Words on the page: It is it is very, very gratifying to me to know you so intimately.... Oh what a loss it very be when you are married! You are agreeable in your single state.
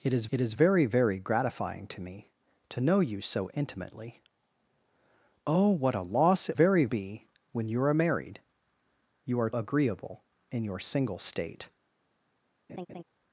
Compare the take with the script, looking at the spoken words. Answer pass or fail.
pass